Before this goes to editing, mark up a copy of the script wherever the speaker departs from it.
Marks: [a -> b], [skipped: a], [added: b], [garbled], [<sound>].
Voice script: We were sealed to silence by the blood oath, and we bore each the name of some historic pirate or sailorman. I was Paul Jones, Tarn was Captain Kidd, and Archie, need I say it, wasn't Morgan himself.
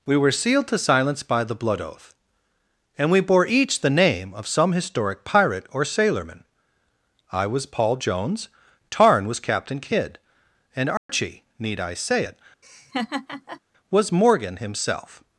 We were sealed to silence by the blood oath, and we bore each the name of some historic pirate or sailorman. I was Paul Jones, Tarn was Captain Kidd, and Archie, [dropout] need I say it, [laugh] [wasn't -> was] Morgan himself.